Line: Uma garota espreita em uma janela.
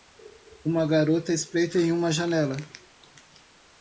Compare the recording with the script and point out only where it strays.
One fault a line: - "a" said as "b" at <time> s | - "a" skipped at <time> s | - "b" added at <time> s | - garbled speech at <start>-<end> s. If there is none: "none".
none